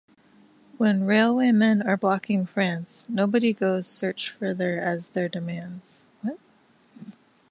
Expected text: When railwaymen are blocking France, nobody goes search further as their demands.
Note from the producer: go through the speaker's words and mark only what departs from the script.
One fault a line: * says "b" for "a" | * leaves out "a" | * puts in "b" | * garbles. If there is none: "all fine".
all fine